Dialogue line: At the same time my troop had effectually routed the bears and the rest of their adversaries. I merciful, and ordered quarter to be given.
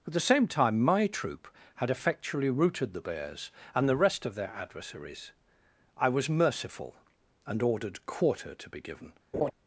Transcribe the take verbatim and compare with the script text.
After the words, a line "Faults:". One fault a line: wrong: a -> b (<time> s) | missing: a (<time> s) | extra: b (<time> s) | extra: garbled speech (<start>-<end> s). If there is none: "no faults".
At the same time my troop had effectually routed the bears and the rest of their adversaries. I was merciful, and ordered quarter to be given.
Faults:
extra: was (6.1 s)